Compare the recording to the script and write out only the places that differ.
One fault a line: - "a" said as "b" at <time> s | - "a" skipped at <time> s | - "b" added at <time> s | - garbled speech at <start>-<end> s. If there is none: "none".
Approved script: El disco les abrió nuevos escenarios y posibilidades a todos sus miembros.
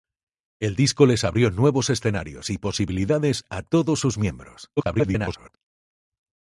- garbled speech at 4.8-5.6 s